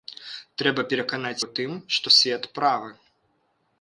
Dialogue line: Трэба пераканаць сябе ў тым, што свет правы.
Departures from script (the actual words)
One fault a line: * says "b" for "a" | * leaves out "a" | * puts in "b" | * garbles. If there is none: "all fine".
* leaves out "сябе"